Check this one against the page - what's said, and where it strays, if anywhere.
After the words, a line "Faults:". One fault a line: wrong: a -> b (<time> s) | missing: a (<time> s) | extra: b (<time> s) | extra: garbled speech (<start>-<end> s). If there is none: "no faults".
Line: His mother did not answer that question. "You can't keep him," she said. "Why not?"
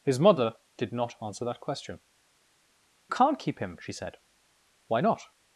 His mother did not answer that question. "Can't keep him," she said. "Why not?"
Faults:
missing: You (2.0 s)